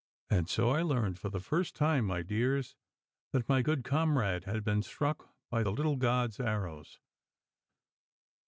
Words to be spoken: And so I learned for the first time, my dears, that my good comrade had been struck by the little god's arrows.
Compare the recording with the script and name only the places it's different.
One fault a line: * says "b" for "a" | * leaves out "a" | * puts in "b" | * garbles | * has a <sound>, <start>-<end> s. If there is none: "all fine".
all fine